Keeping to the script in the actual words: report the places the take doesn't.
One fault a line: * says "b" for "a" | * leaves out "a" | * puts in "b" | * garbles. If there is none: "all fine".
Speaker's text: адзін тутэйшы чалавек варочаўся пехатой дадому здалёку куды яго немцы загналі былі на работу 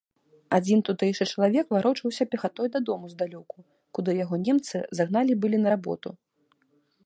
all fine